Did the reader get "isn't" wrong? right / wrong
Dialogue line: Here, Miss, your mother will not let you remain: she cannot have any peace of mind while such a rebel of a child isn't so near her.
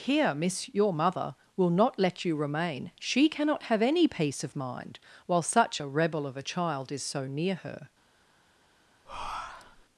wrong